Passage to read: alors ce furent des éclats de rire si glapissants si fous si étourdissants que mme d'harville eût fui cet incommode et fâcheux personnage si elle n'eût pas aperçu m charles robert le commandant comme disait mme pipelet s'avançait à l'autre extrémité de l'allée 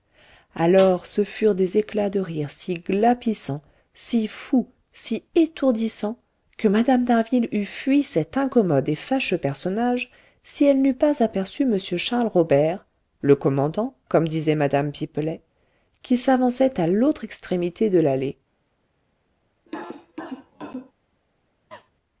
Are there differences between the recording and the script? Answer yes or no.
yes